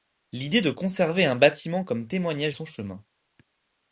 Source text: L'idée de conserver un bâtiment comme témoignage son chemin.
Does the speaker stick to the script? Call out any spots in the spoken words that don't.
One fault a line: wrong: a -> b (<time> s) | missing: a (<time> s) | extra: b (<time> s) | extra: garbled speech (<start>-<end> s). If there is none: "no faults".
no faults